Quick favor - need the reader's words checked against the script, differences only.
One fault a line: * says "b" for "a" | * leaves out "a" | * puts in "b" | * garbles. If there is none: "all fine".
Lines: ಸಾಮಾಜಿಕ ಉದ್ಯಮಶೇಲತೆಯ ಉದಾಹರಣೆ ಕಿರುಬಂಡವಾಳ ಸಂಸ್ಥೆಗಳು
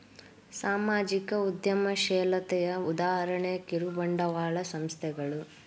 all fine